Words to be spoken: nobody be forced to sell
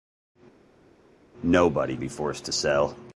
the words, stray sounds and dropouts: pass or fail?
pass